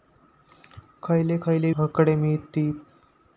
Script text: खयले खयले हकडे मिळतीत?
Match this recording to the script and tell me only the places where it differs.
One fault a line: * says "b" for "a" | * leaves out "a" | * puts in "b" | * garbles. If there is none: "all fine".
all fine